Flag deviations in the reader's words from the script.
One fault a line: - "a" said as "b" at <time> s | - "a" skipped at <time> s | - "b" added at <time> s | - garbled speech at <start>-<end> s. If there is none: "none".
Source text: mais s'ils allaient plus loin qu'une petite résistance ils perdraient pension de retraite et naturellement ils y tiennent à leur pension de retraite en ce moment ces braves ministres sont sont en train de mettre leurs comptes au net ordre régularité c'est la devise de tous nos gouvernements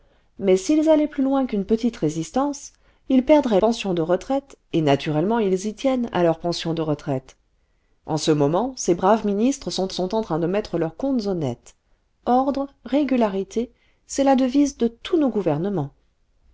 none